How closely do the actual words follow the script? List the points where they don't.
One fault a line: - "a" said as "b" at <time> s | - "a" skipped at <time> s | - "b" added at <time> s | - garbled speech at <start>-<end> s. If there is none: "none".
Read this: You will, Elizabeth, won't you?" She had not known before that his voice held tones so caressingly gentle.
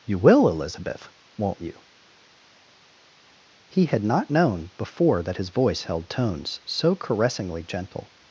- "She" said as "He" at 3.7 s